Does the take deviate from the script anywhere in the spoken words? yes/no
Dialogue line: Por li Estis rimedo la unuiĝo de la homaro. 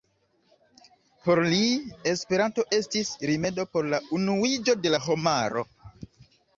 yes